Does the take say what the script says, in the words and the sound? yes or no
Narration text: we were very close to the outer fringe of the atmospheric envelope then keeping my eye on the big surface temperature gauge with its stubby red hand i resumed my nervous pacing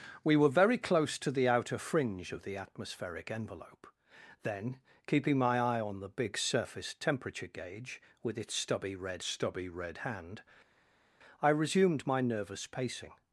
no